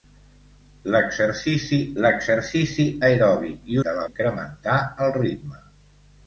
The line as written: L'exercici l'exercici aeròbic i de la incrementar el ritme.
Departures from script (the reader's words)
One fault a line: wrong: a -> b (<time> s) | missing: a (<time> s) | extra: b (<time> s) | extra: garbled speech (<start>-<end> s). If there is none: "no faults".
no faults